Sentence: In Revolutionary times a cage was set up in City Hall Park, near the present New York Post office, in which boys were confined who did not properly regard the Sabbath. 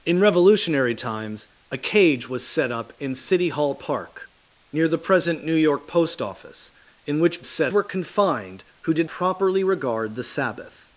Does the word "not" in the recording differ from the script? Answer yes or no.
yes